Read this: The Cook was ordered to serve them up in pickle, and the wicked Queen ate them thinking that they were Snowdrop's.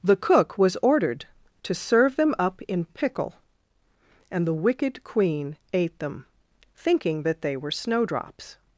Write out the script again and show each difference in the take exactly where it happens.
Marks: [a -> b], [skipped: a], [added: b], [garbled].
The Cook was ordered to serve them up in pickle, and the wicked Queen ate them thinking that they were Snowdrop's.